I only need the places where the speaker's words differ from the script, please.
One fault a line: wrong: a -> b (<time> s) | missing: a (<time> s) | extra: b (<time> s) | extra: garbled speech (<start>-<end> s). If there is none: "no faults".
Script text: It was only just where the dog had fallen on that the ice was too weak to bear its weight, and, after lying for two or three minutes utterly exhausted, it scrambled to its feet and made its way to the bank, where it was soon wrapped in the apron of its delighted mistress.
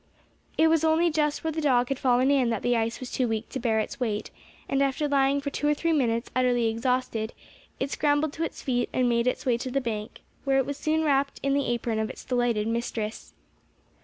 wrong: on -> in (2.3 s)